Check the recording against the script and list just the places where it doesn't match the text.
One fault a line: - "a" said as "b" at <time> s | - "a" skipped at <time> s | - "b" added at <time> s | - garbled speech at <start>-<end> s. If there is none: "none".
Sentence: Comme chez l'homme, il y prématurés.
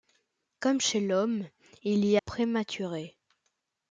none